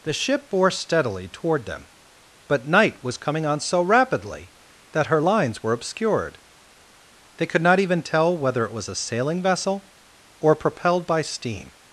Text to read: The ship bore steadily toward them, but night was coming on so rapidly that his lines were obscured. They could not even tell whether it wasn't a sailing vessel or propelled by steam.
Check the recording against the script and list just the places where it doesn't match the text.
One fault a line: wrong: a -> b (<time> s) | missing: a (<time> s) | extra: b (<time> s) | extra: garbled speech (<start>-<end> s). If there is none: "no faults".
wrong: his -> her (5.1 s)
wrong: wasn't -> was (8.7 s)